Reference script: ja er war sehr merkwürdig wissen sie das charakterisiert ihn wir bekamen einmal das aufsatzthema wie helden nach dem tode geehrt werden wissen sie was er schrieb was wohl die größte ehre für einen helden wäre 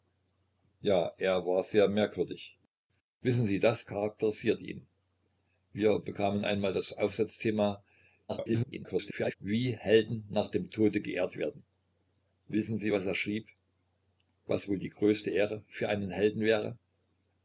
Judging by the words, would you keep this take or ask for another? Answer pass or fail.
fail